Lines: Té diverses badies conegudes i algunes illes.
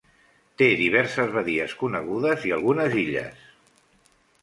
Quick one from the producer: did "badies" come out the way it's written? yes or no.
yes